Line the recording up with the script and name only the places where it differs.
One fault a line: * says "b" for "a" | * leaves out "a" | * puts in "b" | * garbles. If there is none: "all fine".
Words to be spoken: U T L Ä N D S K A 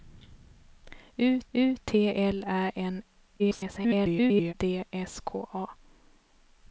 * puts in "u"
* garbles